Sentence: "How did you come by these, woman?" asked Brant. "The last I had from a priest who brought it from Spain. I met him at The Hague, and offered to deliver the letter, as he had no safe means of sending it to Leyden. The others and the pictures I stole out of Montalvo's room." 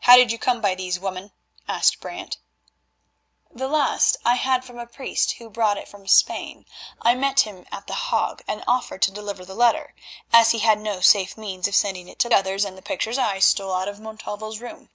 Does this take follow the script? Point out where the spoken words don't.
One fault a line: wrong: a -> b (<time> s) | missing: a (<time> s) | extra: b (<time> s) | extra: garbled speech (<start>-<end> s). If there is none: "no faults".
missing: Leyden The (12.3 s)